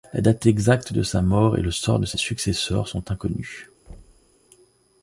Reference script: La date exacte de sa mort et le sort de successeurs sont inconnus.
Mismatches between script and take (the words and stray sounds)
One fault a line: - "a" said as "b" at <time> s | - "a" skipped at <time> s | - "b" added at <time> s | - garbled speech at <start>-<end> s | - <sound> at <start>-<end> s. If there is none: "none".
- "ses" added at 2.1 s
- thud at 3.9-4.4 s